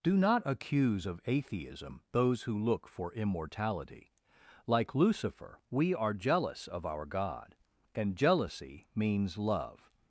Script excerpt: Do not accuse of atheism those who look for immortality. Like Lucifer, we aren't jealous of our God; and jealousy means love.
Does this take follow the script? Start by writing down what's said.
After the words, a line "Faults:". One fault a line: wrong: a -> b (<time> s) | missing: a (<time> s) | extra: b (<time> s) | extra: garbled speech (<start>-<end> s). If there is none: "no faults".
Do not accuse of atheism those who look for immortality. Like Lucifer, we are jealous of our God; and jealousy means love.
Faults:
wrong: aren't -> are (5.9 s)